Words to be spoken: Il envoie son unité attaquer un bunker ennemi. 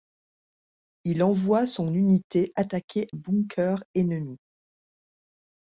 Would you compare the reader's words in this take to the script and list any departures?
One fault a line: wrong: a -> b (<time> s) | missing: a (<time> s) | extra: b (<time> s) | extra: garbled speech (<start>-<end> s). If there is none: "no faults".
missing: un (3.1 s)